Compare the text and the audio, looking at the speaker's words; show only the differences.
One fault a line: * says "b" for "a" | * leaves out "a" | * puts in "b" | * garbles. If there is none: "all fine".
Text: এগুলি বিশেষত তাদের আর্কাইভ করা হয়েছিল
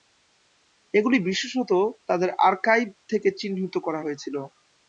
* puts in "থেকে চিহ্নিত"